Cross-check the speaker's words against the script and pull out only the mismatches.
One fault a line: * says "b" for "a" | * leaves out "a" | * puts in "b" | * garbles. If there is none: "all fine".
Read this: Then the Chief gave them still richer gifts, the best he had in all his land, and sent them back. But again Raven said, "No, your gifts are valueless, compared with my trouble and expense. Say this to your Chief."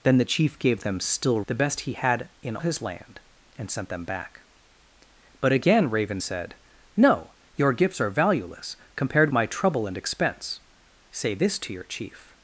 * leaves out "richer gifts"
* leaves out "all"
* leaves out "with"